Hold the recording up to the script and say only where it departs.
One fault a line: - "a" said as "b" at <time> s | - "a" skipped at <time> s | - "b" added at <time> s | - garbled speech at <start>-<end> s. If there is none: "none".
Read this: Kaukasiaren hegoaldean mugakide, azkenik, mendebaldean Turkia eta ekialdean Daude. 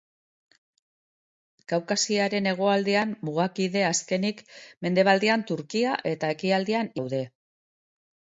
none